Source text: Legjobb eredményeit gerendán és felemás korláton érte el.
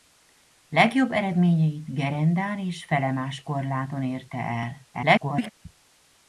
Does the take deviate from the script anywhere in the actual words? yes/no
yes